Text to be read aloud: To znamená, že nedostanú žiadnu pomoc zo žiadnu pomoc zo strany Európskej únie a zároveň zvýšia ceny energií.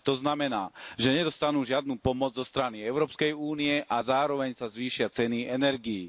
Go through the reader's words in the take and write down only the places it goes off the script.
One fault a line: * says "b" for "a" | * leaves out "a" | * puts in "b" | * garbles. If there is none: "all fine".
* leaves out "žiadnu pomoc zo"
* puts in "sa"